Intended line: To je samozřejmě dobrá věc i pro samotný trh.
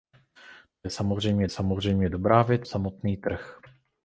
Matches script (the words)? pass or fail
fail